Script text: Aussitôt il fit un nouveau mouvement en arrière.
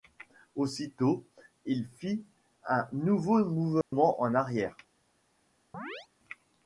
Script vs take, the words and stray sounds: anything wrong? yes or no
yes